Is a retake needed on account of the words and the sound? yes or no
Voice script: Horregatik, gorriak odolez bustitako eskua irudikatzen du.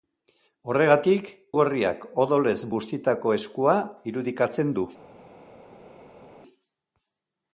no